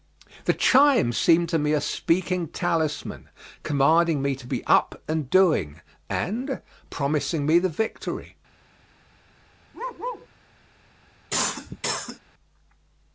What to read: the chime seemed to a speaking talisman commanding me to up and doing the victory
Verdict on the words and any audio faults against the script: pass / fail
fail